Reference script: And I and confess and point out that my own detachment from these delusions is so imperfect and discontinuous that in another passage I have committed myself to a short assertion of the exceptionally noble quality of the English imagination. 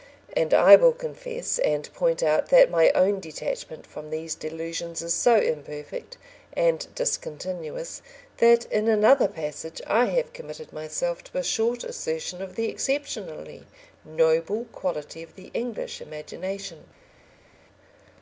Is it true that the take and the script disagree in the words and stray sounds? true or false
true